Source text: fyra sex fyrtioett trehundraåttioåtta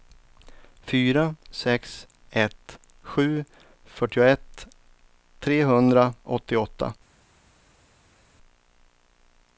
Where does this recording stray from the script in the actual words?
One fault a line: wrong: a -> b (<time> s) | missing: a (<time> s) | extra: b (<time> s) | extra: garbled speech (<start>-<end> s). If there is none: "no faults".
extra: ett sju (2.3 s)